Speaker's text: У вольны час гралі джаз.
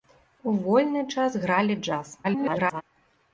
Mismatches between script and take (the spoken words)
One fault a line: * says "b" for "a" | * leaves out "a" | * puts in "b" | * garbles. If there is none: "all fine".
* garbles